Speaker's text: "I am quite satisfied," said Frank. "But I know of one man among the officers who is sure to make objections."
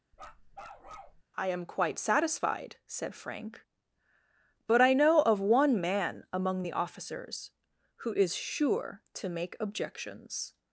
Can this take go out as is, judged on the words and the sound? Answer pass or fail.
fail